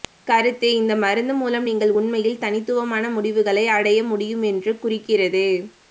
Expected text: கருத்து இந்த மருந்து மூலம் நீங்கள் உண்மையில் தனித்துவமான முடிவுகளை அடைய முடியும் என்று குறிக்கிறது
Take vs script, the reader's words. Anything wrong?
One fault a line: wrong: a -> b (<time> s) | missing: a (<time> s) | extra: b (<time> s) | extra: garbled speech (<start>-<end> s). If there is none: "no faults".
no faults